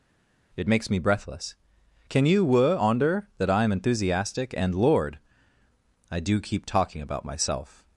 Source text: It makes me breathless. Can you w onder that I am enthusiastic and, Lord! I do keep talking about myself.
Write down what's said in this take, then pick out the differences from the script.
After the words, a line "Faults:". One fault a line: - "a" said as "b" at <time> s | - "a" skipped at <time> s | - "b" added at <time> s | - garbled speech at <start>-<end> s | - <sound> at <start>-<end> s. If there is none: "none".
It makes me breathless. Can you were onder that I am enthusiastic and, Lord! I do keep talking about myself.
Faults:
- "w" said as "were" at 2.4 s